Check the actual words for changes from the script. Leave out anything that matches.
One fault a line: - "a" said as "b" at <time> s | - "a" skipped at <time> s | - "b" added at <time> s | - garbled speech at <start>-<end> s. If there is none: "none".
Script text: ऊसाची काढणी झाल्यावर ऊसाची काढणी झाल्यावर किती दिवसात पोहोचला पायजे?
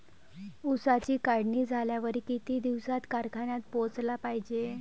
- "ऊसाची काढणी झाल्यावर" skipped at 2.2 s
- "कारखान्यात" added at 3.1 s